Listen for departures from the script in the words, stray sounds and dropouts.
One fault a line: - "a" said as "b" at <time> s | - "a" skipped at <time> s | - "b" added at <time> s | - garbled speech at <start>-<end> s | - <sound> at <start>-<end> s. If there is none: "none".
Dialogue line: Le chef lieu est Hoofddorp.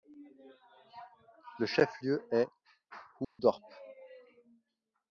- dropout at 3.2-3.4 s